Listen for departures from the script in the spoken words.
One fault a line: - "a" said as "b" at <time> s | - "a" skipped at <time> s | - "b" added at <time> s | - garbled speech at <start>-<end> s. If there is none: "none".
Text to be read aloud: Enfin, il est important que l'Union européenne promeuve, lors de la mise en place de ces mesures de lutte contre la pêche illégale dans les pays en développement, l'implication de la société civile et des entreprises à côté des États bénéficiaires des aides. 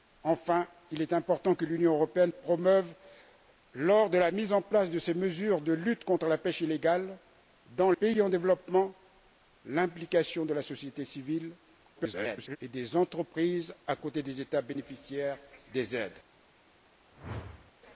- "les" skipped at 7.9 s
- garbled speech at 12.0-12.6 s